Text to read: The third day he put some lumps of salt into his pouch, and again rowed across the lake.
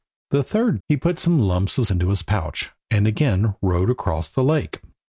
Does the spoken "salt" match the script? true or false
false